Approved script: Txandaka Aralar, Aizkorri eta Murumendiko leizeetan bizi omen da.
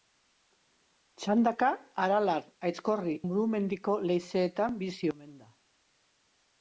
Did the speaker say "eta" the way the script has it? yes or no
no